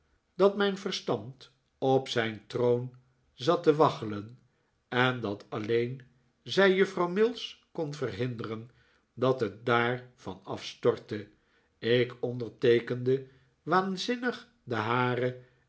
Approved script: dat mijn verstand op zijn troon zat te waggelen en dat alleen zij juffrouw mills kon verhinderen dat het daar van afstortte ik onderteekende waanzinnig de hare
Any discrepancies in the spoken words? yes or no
no